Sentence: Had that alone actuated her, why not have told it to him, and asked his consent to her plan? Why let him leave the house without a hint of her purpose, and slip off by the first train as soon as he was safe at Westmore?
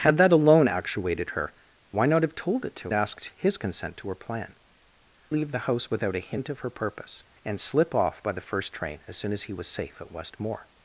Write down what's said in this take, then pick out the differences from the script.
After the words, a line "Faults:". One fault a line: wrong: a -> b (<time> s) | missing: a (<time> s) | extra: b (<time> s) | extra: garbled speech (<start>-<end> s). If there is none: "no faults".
Had that alone actuated her, why not have told it to asked his consent to her plan? Leave the house without a hint of her purpose, and slip off by the first train as soon as he was safe at Westmore?
Faults:
missing: him and (2.9 s)
missing: Why let him (4.6 s)